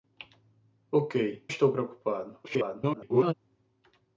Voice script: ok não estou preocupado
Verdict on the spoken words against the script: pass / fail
fail